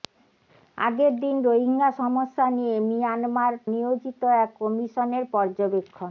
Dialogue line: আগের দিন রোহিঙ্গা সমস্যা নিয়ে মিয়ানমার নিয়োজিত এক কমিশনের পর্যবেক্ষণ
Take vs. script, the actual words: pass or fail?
pass